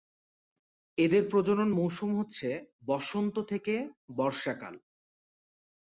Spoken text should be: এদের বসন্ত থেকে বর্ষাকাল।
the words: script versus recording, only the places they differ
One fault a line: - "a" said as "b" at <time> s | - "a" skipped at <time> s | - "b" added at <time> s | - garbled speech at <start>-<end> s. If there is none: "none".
- "প্রজনন মৌসুম হচ্ছে" added at 1.3 s